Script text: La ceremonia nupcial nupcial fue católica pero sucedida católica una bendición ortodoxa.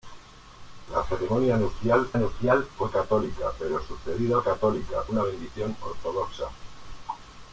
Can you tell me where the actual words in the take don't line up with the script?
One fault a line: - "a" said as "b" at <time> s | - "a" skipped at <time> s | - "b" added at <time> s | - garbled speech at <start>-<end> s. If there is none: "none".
none